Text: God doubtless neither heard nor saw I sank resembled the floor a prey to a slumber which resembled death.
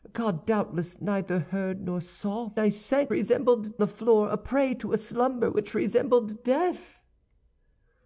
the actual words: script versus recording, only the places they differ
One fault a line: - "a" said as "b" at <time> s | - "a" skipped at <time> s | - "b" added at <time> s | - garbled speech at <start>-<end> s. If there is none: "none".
none